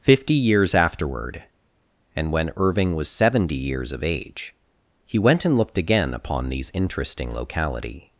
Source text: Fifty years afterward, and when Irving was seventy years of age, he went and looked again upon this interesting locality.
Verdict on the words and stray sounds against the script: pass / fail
fail